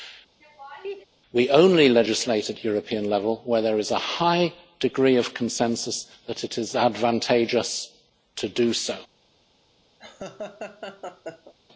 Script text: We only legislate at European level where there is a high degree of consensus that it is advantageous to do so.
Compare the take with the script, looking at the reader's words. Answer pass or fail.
pass